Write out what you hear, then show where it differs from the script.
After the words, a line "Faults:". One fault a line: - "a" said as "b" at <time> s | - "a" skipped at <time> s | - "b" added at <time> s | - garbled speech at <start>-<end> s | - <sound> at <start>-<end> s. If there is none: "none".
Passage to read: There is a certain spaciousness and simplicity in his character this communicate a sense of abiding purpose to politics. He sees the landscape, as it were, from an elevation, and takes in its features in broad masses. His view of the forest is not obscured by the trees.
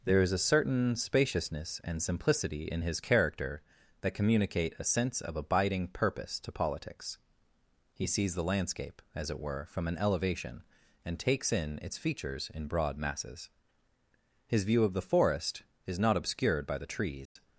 There is a certain spaciousness and simplicity in his character that communicate a sense of abiding purpose to politics. He sees the landscape, as it were, from an elevation, and takes in its features in broad masses. His view of the forest is not obscured by the trees.
Faults:
- "this" said as "that" at 4.0 s
- dropout at 17.3-17.4 s